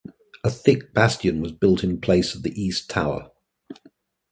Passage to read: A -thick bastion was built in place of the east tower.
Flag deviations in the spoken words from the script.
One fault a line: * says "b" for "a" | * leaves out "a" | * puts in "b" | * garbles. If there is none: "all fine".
all fine